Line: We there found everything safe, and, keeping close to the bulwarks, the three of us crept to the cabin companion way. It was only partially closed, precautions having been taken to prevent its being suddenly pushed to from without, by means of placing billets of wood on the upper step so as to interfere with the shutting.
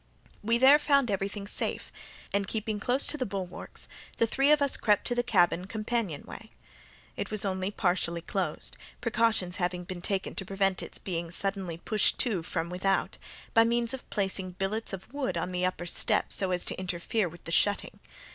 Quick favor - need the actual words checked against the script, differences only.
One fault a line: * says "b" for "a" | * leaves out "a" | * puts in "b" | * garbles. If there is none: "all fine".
all fine